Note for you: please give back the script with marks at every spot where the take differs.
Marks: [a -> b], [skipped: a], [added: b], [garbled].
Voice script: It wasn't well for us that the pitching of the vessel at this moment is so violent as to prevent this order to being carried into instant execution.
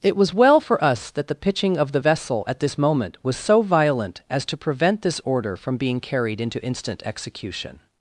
It [wasn't -> was] well for us that the pitching of the vessel at this moment [is -> was] so violent as to prevent this order [to -> from] being carried into instant execution.